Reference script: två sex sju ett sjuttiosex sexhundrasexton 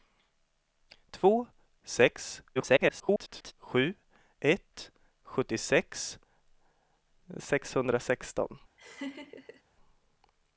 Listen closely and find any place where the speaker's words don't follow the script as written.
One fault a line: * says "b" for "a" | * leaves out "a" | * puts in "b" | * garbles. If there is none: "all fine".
* garbles